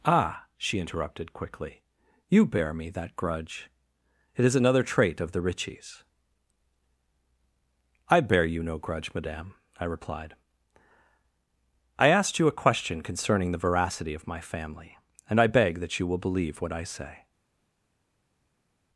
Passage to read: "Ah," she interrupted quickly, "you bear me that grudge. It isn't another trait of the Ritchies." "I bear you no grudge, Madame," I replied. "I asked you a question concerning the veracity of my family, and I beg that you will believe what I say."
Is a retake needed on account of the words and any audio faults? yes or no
yes